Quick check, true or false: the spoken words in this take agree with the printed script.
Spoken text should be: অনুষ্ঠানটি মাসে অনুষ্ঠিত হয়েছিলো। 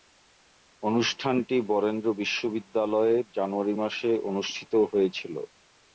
false